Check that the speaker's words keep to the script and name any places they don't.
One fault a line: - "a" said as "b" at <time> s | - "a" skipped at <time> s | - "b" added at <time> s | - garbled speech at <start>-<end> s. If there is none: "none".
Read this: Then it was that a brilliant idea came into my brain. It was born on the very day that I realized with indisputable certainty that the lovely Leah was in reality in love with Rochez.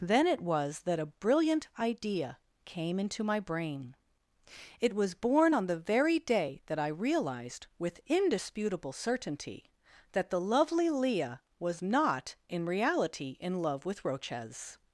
- "not" added at 11.8 s